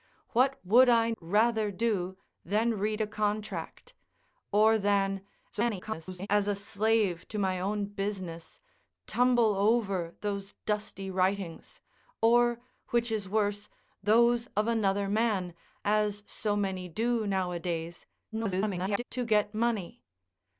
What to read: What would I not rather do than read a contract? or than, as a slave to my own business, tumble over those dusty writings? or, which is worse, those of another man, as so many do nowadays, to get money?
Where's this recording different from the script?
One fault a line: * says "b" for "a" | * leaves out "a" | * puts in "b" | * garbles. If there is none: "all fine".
* leaves out "not"
* garbles
* garbles